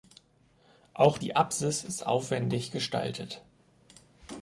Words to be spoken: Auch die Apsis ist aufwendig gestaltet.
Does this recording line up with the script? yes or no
yes